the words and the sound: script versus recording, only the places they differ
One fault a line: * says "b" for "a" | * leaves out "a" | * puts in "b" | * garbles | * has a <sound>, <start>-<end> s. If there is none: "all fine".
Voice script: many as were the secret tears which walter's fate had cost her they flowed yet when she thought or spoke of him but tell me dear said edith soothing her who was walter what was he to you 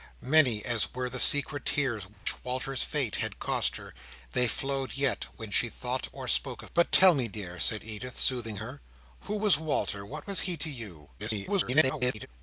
* has a dropout, 2.1-2.3 s
* leaves out "him"
* garbles